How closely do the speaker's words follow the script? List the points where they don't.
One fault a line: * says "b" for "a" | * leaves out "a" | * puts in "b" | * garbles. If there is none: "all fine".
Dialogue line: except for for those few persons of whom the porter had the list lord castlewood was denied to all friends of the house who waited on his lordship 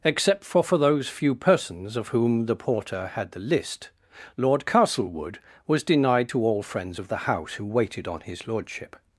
all fine